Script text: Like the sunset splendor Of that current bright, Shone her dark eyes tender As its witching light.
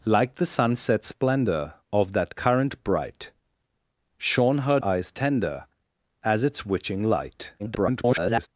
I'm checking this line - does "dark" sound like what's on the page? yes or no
no